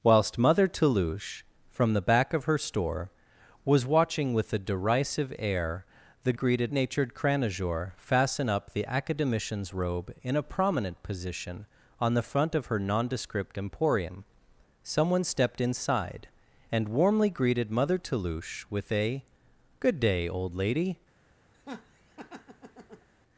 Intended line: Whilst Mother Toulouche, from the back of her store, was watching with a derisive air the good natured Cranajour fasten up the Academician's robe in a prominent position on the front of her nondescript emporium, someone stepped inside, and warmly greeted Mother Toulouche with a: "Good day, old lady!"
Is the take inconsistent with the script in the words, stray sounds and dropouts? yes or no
yes